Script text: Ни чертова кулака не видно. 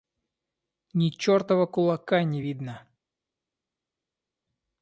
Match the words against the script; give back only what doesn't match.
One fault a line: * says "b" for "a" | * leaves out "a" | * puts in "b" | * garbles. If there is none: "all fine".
all fine